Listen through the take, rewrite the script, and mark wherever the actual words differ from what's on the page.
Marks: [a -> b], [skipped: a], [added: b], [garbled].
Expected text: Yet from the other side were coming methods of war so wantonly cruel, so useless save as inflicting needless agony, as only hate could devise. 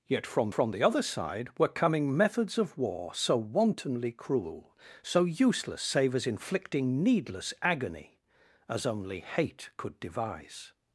Yet from [added: from] the other side were coming methods of war so wantonly cruel, so useless save as inflicting needless agony, as only hate could devise.